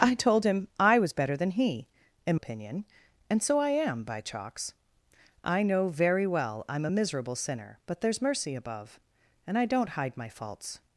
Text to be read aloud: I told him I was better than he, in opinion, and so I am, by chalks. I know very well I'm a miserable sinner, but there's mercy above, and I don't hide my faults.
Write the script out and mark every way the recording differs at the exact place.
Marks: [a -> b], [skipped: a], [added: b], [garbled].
I told him I was better than he, in opinion, and so I am, by chalks. I know very well I'm a miserable sinner, but there's mercy above, and I don't hide my faults.